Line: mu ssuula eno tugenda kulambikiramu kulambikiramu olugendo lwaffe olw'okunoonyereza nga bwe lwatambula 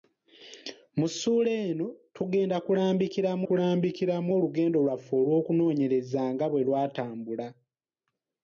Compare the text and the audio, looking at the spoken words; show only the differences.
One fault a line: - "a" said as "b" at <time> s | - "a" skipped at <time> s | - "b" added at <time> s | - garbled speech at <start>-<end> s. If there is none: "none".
none